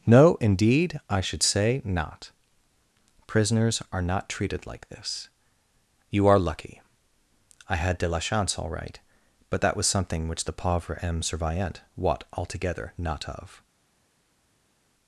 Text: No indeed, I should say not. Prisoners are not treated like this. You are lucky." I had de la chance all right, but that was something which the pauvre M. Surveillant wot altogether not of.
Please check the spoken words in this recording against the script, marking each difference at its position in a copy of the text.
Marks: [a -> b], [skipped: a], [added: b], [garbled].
No indeed, I should say not. Prisoners are not treated like this. You are lucky." I had de la chance all right, but that was something which the pauvre M. Surveillant wot altogether not of.